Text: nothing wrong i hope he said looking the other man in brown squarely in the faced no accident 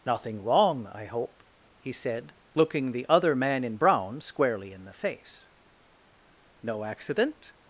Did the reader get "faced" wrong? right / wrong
wrong